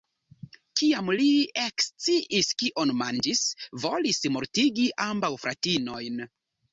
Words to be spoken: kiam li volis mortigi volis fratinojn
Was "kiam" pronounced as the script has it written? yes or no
yes